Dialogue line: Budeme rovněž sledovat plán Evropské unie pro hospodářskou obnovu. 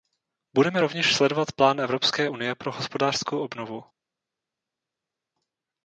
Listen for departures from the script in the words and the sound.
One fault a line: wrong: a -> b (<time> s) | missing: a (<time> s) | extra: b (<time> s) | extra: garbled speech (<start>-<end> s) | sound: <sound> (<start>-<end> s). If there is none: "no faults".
no faults